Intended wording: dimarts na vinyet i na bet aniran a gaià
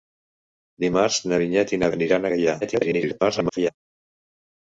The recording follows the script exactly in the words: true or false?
false